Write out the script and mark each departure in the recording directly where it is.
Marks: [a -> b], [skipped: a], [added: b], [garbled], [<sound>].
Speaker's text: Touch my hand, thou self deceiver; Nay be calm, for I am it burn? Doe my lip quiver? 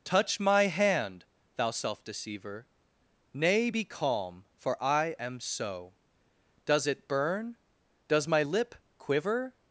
Touch my hand, thou self deceiver; Nay be calm, for I am [added: so Does] it burn? [Doe -> Does] my lip quiver?